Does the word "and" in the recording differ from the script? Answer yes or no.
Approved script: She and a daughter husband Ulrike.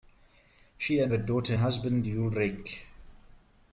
no